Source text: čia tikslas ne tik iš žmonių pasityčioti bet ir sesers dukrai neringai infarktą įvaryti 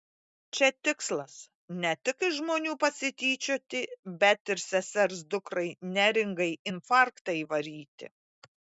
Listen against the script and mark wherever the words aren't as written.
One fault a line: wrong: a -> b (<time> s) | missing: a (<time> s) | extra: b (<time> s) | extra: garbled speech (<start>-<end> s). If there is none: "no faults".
no faults